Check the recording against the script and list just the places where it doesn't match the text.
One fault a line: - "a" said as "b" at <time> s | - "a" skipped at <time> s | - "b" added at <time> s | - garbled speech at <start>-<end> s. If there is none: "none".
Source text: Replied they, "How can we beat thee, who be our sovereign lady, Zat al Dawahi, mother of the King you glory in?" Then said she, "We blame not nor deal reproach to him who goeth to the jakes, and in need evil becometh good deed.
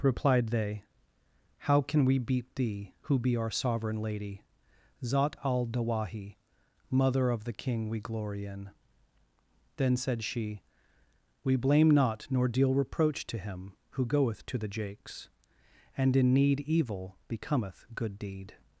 - "you" said as "we" at 7.9 s